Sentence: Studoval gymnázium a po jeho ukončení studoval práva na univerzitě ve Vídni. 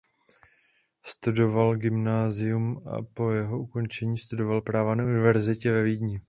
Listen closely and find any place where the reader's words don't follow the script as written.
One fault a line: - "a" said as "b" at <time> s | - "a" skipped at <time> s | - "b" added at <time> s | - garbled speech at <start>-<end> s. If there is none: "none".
none